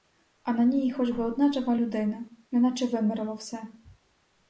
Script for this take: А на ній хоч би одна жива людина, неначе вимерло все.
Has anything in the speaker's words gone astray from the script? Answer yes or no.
no